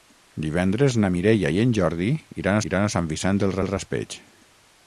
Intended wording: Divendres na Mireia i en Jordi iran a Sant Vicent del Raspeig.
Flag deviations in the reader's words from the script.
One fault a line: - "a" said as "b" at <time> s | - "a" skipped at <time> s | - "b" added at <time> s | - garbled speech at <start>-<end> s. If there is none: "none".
- "iran" added at 2.7 s
- "del" added at 3.6 s